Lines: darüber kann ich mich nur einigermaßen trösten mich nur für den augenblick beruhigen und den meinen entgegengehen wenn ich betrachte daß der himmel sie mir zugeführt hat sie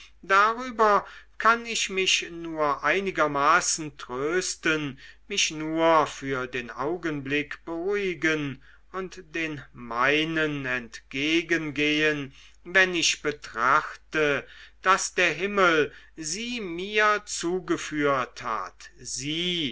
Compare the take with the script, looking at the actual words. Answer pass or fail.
pass